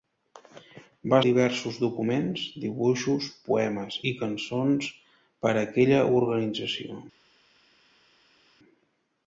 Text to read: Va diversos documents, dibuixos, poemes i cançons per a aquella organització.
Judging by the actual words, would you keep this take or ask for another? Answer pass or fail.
pass